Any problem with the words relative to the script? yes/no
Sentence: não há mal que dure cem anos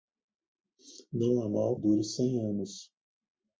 yes